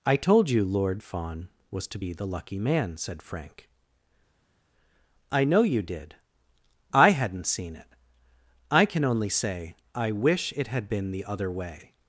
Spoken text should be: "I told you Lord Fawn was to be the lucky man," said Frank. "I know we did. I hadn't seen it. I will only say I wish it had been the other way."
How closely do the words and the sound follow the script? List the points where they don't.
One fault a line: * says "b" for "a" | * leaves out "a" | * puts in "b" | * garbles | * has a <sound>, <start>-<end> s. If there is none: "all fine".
* says "you" for "we"
* says "can" for "will"